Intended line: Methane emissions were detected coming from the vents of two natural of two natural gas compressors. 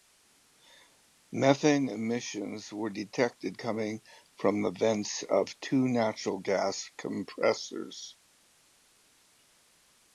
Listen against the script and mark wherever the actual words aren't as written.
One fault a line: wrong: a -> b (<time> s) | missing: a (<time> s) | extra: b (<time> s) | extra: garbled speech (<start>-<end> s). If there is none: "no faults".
missing: of two natural (6.4 s)